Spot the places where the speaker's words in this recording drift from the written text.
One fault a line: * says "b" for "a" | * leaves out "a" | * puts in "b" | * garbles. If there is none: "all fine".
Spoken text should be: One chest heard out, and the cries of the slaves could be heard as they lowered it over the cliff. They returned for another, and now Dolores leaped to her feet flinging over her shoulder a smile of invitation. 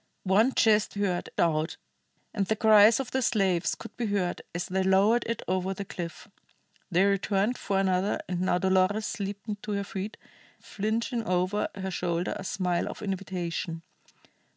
all fine